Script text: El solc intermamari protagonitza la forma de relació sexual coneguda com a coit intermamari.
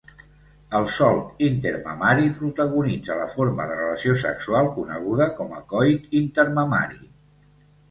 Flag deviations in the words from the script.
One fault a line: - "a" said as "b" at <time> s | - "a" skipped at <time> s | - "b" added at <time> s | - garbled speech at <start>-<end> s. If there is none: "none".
none